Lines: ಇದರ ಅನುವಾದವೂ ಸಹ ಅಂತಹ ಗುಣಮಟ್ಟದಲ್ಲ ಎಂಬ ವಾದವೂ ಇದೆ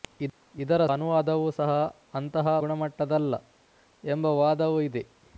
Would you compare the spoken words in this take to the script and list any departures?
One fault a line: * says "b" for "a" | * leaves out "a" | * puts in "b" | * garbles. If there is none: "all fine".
all fine